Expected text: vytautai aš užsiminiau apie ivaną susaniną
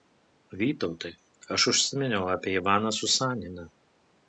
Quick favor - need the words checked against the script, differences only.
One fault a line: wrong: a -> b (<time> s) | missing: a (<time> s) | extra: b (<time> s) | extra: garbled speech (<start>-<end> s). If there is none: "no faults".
no faults